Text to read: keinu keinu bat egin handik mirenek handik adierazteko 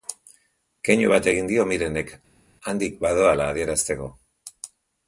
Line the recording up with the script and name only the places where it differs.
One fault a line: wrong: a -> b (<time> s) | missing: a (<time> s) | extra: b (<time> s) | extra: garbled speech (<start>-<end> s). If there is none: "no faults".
missing: keinu (1.1 s)
wrong: handik -> dio (1.5 s)
extra: badoala (3.0 s)